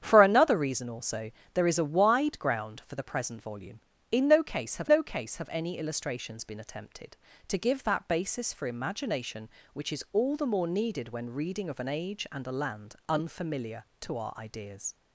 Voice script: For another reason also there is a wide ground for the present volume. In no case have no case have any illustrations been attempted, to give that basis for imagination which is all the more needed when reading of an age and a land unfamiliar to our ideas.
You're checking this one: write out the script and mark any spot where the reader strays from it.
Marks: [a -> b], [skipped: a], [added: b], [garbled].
For another reason also there is a wide ground for the present volume. In no case have no case have any illustrations been attempted, to give that basis for imagination which is all the more needed when reading of an age and a land unfamiliar to our ideas.